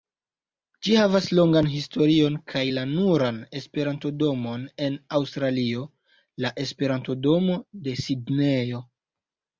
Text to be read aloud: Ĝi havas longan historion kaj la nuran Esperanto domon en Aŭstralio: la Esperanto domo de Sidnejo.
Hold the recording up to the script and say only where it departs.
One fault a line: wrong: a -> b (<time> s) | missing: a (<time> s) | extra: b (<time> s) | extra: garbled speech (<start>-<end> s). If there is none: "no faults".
no faults